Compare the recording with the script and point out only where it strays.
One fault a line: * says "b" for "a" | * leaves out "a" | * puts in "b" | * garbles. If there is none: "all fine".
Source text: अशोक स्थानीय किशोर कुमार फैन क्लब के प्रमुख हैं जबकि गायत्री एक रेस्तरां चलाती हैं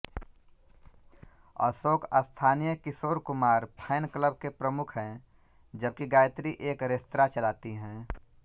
all fine